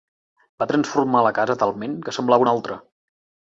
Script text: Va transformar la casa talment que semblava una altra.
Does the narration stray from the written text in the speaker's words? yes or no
no